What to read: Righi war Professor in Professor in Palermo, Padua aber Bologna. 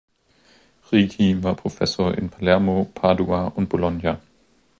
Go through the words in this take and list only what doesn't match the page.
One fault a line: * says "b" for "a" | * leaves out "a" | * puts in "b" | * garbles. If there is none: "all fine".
* leaves out "Professor in"
* says "und" for "aber"